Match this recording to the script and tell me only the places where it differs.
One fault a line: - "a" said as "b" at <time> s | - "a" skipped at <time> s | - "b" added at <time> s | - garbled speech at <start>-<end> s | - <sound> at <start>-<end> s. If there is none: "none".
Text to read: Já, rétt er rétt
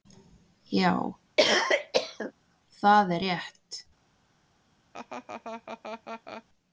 - cough at 1.4-2.3 s
- "rétt" said as "það" at 2.8 s
- laugh at 4.9-6.4 s